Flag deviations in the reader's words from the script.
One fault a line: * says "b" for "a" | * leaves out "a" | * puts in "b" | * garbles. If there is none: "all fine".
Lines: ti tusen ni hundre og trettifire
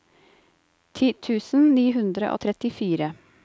all fine